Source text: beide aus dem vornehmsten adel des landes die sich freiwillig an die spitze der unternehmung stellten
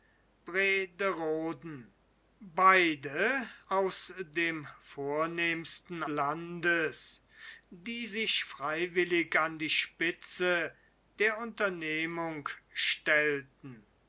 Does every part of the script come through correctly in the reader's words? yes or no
no